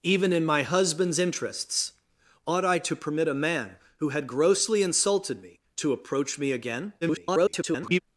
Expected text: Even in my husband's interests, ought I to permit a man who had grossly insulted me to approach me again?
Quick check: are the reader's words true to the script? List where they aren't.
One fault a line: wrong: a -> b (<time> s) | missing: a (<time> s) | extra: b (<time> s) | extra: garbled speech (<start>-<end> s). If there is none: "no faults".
extra: garbled speech (7.0-8.0 s)